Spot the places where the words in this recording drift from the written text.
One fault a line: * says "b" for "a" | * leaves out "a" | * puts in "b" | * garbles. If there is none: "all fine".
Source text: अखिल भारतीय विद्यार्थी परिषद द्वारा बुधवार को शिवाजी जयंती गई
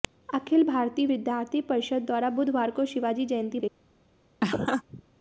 all fine